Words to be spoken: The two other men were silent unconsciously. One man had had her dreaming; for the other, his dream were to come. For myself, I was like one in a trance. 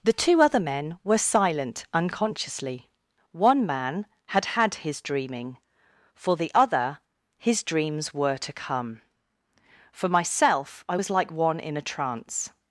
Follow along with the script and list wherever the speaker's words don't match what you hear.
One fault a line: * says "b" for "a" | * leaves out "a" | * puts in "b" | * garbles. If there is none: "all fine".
* says "his" for "her"
* says "dreams" for "dream"